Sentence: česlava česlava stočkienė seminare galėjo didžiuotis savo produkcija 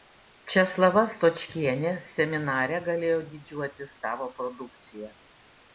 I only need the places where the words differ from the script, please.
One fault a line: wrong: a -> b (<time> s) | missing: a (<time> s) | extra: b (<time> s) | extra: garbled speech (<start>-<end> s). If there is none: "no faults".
missing: česlava (1.0 s)